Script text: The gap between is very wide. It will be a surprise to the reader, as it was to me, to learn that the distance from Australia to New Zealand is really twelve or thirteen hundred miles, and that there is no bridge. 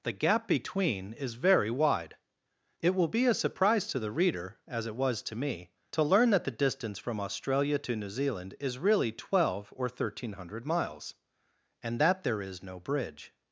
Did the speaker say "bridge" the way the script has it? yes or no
yes